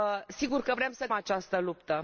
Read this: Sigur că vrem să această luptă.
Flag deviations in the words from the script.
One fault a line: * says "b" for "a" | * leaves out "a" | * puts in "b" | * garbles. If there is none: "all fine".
all fine